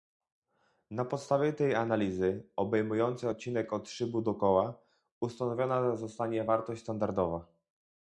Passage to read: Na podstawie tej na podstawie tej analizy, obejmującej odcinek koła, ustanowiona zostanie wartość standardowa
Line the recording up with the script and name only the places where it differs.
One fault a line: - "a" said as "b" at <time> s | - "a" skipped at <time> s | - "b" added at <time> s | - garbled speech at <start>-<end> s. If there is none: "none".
- "na podstawie tej analizy obejmującej odcinek" said as "analizy obejmującej odcinek od szybu do" at 1.8 s